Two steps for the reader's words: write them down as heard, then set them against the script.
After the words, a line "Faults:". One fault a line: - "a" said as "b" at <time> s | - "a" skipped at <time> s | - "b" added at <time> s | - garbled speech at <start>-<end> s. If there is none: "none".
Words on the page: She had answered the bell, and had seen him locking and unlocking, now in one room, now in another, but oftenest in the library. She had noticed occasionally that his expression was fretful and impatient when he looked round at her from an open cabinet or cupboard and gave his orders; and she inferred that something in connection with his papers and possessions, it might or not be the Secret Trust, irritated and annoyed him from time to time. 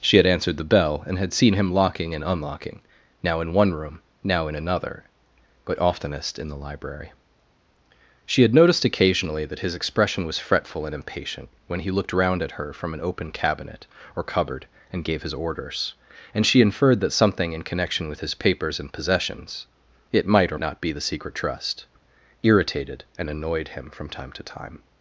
She had answered the bell, and had seen him locking and unlocking, now in one room, now in another, but oftenest in the library. She had noticed occasionally that his expression was fretful and impatient when he looked round at her from an open cabinet or cupboard and gave his orders; and she inferred that something in connection with his papers and possessions, it might or not be the Secret Trust, irritated and annoyed him from time to time.
Faults:
none